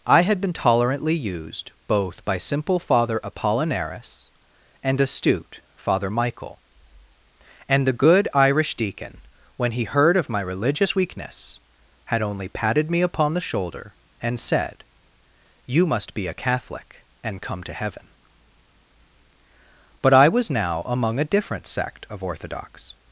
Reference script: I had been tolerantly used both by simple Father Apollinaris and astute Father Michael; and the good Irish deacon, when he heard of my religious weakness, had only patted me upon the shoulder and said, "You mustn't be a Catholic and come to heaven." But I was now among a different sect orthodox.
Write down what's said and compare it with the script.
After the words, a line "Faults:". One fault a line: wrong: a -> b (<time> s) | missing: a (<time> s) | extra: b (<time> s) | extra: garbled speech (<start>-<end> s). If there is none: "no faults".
I had been tolerantly used both by simple Father Apollinaris and astute Father Michael; and the good Irish deacon, when he heard of my religious weakness, had only patted me upon the shoulder and said, "You must be a Catholic and come to heaven." But I was now among a different sect of orthodox.
Faults:
wrong: mustn't -> must (15.8 s)
extra: of (22.1 s)